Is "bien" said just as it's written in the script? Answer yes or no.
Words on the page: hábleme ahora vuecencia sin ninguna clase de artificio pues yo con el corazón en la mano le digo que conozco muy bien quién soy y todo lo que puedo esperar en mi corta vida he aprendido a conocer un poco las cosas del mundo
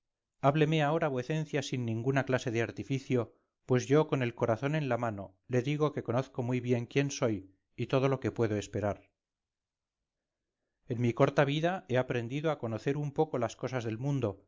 yes